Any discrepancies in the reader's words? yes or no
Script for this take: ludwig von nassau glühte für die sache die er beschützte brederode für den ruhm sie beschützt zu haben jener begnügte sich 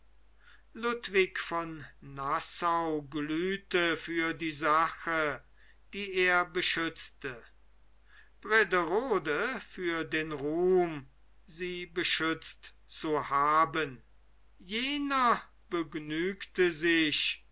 no